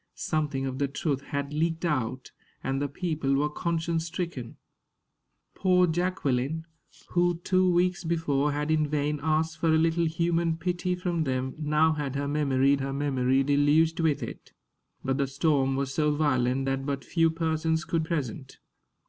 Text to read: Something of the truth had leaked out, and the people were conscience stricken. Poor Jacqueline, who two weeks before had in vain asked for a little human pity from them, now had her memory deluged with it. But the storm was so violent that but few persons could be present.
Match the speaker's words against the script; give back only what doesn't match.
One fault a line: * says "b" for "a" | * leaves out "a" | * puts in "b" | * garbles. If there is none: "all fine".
* puts in "her memory"
* leaves out "be"